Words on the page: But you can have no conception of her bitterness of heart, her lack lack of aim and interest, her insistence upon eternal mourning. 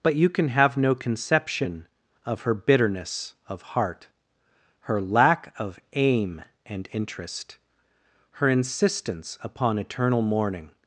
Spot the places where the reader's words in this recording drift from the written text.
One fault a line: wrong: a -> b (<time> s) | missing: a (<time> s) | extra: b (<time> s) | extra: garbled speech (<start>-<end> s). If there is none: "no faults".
missing: lack (5.5 s)